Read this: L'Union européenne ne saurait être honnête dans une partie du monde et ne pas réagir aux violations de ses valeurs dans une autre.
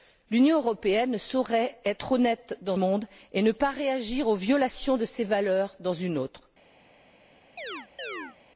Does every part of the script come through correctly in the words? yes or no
no